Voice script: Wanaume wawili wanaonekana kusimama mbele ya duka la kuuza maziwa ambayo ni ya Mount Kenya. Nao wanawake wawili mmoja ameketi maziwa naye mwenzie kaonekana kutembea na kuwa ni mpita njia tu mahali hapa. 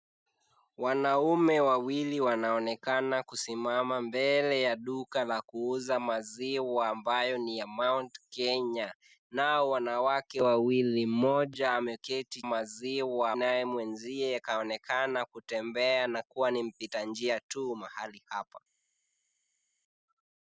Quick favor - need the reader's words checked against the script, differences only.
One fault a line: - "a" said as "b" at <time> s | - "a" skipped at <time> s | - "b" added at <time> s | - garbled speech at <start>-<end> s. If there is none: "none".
none